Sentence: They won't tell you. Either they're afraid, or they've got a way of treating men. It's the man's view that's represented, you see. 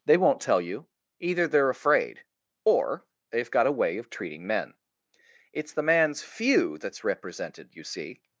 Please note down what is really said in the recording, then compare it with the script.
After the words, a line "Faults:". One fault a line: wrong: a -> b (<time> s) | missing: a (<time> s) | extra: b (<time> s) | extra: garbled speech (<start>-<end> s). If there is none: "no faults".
They won't tell you. Either they're afraid, or they've got a way of treating men. It's the man's few that's represented, you see.
Faults:
wrong: view -> few (6.2 s)